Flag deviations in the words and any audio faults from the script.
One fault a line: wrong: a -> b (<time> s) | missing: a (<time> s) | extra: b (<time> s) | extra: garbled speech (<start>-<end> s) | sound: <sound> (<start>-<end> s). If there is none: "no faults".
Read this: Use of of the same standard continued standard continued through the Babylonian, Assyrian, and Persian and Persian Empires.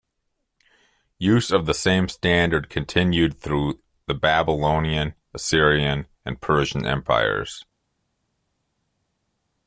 missing: of (1.6 s)
missing: standard continued (3.4 s)
missing: and Persian (6.9 s)